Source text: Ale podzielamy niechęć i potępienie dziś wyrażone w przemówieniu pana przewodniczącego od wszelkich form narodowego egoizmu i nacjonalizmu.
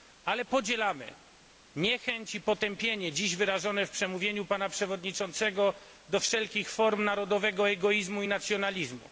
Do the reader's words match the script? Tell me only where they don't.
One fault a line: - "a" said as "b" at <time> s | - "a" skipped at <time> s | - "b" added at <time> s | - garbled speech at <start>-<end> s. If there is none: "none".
- "od" said as "do" at 6.1 s